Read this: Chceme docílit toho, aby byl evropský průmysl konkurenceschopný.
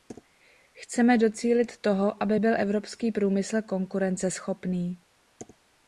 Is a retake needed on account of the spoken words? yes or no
no